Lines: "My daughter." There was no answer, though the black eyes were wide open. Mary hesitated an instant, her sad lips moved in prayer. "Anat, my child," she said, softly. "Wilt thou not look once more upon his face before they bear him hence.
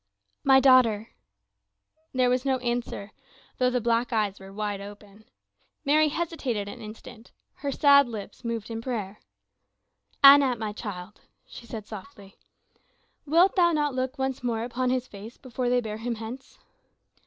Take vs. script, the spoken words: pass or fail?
pass